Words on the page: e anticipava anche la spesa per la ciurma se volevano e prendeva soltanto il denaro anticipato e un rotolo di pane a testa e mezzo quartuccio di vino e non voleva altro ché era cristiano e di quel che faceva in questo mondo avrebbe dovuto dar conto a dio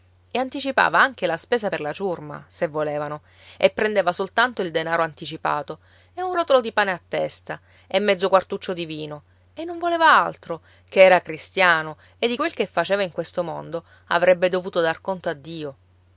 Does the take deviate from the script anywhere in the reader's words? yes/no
no